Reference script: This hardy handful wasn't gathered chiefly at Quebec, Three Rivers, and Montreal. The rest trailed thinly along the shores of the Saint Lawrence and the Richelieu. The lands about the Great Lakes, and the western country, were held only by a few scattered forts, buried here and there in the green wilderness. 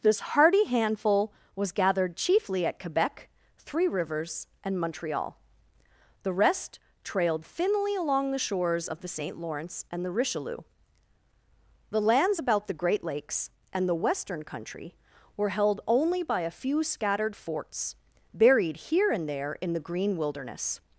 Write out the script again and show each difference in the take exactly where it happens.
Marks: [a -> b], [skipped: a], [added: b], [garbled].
This hardy handful [wasn't -> was] gathered chiefly at Quebec, Three Rivers, and Montreal. The rest trailed thinly along the shores of the Saint Lawrence and the Richelieu. The lands about the Great Lakes, and the western country, were held only by a few scattered forts, buried here and there in the green wilderness.